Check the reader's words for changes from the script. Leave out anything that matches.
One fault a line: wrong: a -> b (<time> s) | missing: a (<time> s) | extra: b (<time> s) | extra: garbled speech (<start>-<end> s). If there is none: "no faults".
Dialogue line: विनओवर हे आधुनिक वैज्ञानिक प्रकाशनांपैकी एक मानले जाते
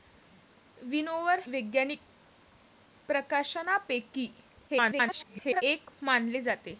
missing: हे आधुनिक (1.4 s)
extra: garbled speech (4.7-5.6 s)